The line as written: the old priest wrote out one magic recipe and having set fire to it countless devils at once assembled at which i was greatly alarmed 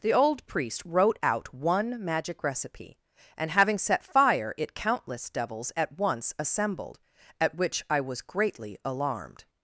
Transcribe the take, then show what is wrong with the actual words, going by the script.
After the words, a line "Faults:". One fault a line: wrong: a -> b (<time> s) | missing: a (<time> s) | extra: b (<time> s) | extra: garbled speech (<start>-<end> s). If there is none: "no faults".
the old priest wrote out one magic recipe and having set fire it countless devils at once assembled at which i was greatly alarmed
Faults:
missing: to (4.5 s)